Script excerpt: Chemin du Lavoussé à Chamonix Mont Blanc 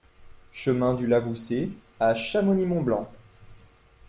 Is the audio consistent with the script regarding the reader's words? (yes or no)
yes